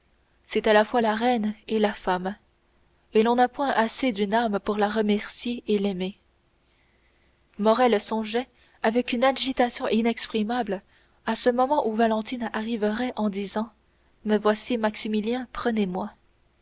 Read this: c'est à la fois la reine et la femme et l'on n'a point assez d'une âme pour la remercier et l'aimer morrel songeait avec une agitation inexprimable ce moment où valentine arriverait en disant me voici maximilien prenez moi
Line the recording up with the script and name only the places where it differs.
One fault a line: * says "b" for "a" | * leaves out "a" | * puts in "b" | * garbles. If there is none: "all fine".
* puts in "à"